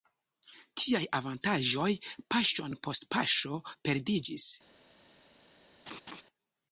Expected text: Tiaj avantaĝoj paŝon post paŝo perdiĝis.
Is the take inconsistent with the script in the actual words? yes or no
no